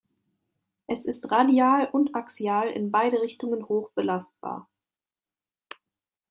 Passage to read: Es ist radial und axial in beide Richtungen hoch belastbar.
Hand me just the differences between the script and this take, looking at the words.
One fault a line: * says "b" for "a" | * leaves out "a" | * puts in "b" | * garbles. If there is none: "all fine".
all fine